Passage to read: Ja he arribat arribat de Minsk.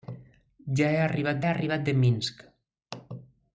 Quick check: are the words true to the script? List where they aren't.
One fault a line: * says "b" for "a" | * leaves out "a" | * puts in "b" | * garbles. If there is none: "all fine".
all fine